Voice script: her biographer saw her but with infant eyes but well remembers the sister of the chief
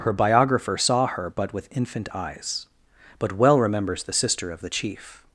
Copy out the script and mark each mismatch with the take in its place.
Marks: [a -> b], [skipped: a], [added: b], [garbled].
her biographer saw her but with infant eyes but well remembers the sister of the chief